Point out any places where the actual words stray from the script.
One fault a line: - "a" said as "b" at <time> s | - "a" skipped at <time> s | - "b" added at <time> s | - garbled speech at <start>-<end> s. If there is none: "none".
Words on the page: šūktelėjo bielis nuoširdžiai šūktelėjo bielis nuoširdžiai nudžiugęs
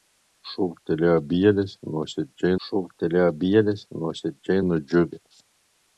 none